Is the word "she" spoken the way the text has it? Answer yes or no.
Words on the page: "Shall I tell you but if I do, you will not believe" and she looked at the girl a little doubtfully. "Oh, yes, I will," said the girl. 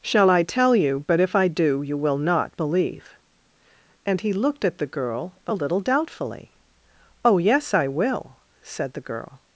no